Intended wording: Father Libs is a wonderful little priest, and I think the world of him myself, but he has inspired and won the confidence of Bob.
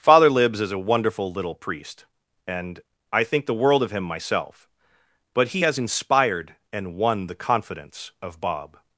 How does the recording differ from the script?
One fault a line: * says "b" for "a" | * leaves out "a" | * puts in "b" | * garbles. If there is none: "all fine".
all fine